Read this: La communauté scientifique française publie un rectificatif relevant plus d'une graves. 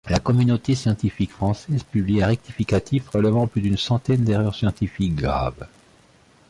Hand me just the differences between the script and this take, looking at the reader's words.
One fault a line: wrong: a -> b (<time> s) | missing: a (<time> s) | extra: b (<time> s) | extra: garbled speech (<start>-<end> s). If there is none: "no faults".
extra: centaine d'erreurs scientifiques (3.8 s)